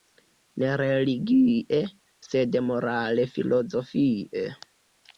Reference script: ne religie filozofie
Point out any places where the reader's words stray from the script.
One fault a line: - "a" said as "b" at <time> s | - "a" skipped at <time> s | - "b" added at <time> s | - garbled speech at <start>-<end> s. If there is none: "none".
- "sed morale" added at 2.3 s